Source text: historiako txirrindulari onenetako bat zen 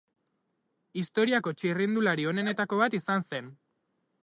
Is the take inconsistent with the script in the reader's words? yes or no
yes